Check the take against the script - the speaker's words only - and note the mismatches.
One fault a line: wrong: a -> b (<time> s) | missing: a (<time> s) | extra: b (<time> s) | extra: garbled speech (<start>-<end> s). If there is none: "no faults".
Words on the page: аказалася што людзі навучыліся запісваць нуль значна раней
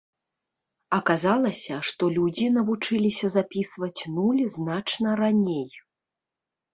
no faults